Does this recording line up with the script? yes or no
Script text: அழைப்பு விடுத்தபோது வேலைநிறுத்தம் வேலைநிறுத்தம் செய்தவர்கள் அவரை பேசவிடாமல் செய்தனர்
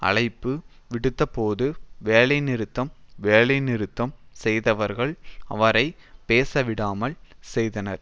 yes